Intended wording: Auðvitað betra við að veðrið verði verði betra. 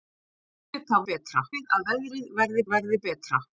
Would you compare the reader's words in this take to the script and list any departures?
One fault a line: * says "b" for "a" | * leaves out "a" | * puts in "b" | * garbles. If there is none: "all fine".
all fine